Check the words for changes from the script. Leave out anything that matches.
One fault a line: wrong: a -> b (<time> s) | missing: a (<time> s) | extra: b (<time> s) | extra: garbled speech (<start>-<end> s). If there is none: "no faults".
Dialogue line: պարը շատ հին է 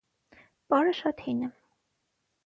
no faults